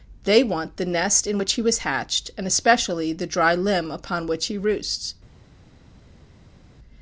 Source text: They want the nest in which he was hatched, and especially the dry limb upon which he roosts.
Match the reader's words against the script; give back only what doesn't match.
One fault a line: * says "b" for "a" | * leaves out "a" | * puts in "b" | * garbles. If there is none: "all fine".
all fine